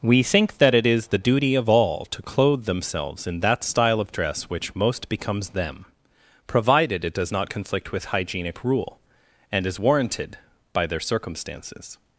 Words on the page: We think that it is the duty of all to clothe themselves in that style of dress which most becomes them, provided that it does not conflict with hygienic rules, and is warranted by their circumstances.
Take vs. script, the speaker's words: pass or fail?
fail